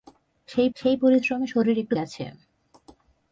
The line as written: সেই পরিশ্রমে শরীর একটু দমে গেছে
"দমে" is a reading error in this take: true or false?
true